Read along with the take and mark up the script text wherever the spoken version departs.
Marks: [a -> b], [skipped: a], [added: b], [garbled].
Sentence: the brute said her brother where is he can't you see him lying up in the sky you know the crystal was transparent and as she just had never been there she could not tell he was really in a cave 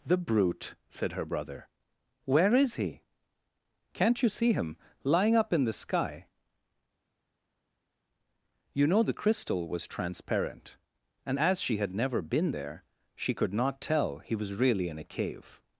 the brute said her brother where is he can't you see him lying up in the sky you know the crystal was transparent and as she [skipped: just] had never been there she could not tell he was really in a cave